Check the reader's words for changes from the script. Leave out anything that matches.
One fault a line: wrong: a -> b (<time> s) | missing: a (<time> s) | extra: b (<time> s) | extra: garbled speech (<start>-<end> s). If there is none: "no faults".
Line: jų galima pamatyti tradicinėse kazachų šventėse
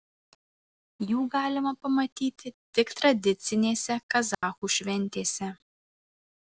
extra: tik (2.8 s)